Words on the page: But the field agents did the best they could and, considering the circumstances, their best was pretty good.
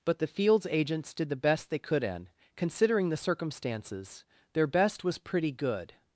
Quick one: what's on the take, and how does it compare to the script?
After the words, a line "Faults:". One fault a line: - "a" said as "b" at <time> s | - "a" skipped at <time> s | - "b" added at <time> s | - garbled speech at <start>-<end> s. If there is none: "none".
But the fields agents did the best they could and, considering the circumstances, their best was pretty good.
Faults:
- "field" said as "fields" at 0.3 s